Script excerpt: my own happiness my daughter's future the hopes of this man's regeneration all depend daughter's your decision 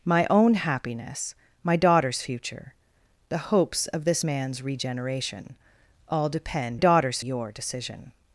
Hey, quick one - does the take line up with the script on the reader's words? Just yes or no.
yes